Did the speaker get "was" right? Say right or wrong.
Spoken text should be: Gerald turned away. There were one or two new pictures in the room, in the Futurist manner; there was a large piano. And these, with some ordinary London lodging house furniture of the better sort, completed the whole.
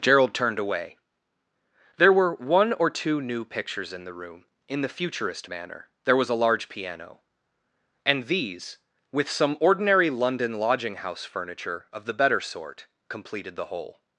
right